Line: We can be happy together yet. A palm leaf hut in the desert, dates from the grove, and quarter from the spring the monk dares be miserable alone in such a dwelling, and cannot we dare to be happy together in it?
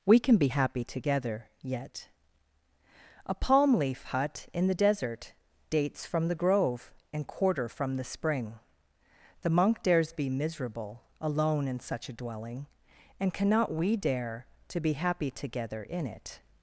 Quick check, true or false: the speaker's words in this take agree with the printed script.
true